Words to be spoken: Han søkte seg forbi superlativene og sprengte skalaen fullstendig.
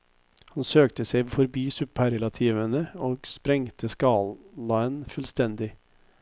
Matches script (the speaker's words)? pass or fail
pass